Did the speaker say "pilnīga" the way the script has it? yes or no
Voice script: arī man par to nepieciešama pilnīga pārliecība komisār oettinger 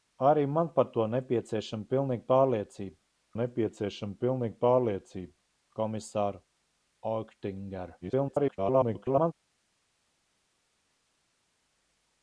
yes